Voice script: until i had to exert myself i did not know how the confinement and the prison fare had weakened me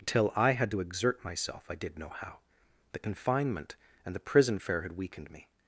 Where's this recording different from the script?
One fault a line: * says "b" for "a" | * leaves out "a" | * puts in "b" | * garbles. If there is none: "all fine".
* leaves out "not"